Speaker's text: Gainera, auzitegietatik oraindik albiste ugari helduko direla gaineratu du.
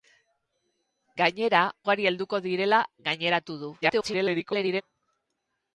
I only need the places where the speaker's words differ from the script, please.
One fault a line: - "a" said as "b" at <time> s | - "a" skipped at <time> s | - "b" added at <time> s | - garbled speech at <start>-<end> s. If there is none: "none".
- "auzitegietatik oraindik albiste" skipped at 1.6 s
- garbled speech at 3.8-4.8 s